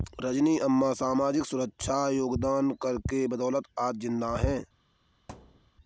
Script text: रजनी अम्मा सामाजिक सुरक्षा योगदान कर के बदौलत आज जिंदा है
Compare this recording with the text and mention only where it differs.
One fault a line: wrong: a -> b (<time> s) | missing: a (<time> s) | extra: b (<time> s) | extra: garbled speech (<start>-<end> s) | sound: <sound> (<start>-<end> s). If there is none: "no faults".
sound: thud (5.3-5.7 s)